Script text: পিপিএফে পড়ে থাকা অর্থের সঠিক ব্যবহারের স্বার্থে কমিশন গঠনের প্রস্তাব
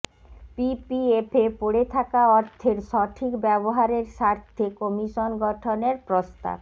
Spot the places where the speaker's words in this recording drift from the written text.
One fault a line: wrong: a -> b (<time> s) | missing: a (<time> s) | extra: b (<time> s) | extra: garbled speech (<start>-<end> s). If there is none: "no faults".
no faults